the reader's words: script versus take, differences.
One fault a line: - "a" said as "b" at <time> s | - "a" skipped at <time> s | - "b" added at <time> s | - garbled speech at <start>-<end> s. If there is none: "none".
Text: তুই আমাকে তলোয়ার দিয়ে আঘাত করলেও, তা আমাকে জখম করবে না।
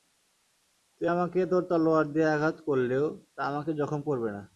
- "তোর" added at 1.4 s